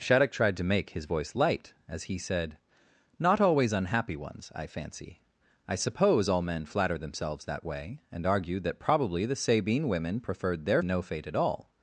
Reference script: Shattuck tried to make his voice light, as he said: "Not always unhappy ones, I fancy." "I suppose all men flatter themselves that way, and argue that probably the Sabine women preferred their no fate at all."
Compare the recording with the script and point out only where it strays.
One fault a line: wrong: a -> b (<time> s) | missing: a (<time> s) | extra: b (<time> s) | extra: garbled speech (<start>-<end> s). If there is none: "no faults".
no faults